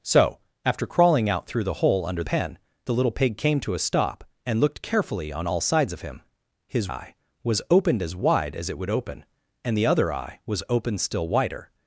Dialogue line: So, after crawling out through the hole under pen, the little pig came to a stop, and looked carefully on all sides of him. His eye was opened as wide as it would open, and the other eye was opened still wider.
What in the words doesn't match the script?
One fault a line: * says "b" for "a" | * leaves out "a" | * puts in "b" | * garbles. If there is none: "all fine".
all fine